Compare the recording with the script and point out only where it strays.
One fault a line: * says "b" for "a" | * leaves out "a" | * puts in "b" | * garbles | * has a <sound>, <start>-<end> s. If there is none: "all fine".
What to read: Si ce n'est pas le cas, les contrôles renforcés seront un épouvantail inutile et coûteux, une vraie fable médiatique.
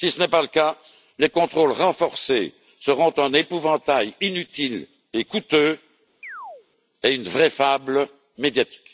* has a chirp, 6.2-6.7 s
* puts in "et"